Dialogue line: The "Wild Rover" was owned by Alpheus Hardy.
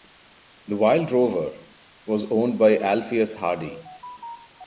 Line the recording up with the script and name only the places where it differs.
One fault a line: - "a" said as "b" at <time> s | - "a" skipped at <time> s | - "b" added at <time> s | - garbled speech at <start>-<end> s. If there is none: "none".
none